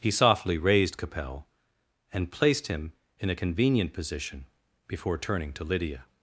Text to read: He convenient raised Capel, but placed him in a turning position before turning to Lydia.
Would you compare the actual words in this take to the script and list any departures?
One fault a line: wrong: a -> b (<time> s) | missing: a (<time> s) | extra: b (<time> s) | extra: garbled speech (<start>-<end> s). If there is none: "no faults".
wrong: convenient -> softly (0.1 s)
wrong: but -> and (2.1 s)
wrong: turning -> convenient (3.3 s)